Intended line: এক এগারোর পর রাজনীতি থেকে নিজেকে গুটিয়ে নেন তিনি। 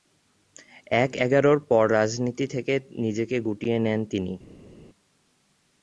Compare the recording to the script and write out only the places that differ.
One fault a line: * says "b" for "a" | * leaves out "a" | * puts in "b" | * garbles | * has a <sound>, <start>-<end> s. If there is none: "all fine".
all fine